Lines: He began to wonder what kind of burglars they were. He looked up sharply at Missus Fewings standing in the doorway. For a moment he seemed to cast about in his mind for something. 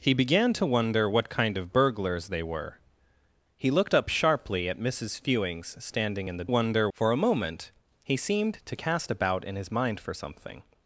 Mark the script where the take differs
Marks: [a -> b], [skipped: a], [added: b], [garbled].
He began to wonder what kind of burglars they were. He looked up sharply at Missus Fewings standing in the [doorway. -> wonder] For a moment he seemed to cast about in his mind for something.